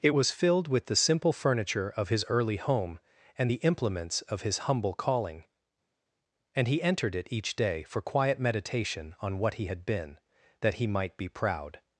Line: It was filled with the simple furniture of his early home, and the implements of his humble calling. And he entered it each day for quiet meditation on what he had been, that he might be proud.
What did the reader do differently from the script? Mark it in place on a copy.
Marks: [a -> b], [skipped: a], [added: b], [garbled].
It was filled with the simple furniture of his early home, and the implements of his humble calling. And he entered it each day for quiet meditation on what he had been, that he might be proud.